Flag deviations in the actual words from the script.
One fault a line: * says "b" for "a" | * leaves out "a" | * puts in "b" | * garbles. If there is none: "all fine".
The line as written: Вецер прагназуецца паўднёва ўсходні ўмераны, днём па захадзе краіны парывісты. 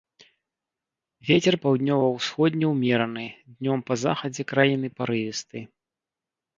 * leaves out "прагназуецца"